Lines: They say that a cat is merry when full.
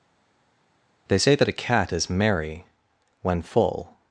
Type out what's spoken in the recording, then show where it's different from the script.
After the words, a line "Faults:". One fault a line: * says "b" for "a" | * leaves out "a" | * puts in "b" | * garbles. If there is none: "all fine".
They say that a cat is merry when full.
Faults:
all fine